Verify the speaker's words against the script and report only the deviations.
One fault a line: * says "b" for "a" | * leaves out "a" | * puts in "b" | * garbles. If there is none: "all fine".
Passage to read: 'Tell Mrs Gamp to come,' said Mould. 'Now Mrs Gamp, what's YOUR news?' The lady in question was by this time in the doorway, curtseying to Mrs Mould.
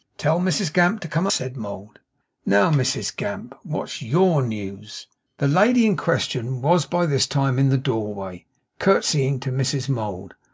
all fine